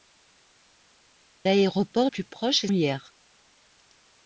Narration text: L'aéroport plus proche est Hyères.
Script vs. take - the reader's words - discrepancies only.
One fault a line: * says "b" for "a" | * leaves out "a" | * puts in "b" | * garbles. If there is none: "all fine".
all fine